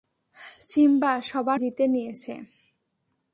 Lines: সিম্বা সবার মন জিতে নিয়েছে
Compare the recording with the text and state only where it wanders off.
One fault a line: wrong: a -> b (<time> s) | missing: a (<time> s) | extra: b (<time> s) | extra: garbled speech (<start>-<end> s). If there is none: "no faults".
missing: মন (1.6 s)